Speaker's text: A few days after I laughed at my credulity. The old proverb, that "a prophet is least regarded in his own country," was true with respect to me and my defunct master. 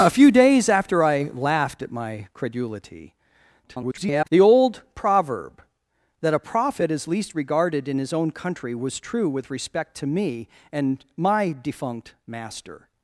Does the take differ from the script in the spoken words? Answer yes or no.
yes